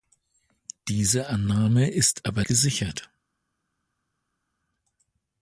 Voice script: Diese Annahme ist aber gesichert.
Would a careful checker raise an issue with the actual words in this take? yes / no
no